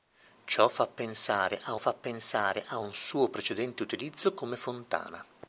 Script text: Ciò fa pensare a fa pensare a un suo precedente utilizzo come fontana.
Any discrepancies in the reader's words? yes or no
no